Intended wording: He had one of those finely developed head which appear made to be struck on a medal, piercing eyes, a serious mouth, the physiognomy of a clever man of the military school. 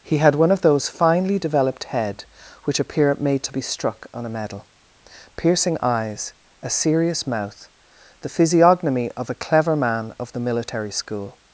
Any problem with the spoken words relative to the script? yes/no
no